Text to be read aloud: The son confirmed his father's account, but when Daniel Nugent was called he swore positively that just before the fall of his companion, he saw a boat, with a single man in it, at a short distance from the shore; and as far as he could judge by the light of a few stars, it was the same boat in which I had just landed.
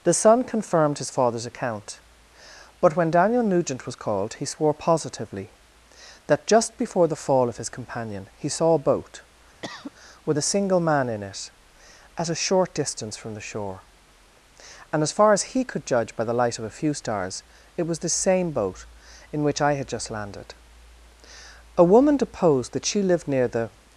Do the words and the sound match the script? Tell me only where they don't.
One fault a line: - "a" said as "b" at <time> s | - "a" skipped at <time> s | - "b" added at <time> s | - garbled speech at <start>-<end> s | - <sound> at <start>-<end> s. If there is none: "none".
- cough at 9.6-9.9 s
- "A woman deposed that she lived near the" added at 21.8 s